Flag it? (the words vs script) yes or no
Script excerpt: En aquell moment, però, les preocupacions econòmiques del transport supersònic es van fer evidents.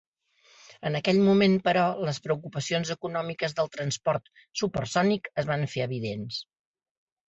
no